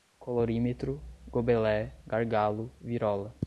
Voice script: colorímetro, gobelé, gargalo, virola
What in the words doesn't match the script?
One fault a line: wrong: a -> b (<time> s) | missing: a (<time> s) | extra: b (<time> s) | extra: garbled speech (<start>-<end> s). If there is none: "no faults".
no faults